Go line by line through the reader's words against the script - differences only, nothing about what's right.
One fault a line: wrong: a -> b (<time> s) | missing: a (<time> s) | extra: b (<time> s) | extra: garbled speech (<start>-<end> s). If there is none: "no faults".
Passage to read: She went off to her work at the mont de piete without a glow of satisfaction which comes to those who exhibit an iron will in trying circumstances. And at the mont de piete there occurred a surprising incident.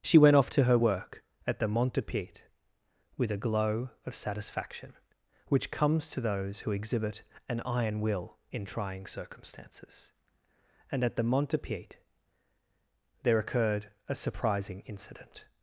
wrong: without -> with (3.2 s)